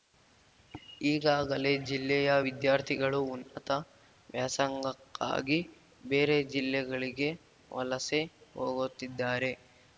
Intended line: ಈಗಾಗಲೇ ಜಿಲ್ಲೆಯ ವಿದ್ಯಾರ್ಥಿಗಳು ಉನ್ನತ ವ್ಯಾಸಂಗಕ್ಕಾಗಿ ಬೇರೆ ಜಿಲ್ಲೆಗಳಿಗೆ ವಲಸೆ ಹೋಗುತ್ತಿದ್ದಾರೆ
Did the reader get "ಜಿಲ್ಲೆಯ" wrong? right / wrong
right